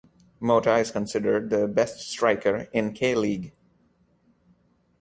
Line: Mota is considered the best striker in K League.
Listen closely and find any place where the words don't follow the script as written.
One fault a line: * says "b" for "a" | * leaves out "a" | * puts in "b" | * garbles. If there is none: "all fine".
all fine